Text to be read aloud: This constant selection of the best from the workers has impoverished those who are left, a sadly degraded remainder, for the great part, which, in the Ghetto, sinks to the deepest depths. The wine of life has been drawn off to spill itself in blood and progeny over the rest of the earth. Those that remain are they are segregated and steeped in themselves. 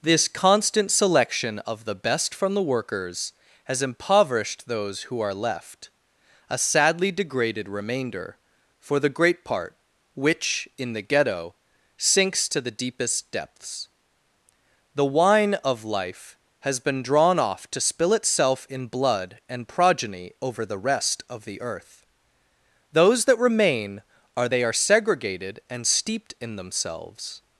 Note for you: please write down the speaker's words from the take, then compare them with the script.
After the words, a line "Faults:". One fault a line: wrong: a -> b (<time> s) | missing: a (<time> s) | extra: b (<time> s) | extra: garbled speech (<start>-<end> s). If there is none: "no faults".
This constant selection of the best from the workers has impoverished those who are left, a sadly degraded remainder, for the great part, which, in the Ghetto, sinks to the deepest depths. The wine of life has been drawn off to spill itself in blood and progeny over the rest of the earth. Those that remain are they are segregated and steeped in themselves.
Faults:
no faults